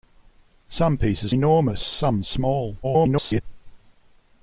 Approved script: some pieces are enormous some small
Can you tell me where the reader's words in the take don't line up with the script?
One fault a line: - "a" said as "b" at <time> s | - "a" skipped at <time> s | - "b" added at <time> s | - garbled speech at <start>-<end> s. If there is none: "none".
- "are" skipped at 1.4 s
- garbled speech at 2.8-3.4 s